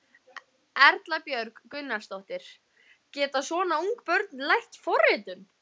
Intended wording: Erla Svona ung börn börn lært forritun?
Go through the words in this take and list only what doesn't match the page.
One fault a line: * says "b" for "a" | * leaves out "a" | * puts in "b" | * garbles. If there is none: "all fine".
* puts in "Björg Gunnarsdóttir Geta"
* leaves out "börn"